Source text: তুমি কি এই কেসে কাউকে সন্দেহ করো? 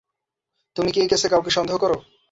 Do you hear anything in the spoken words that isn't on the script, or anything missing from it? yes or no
no